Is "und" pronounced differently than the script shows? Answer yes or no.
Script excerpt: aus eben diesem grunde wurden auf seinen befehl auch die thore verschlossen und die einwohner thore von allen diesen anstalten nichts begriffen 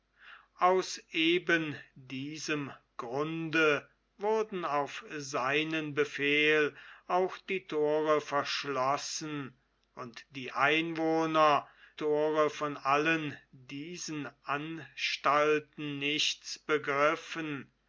no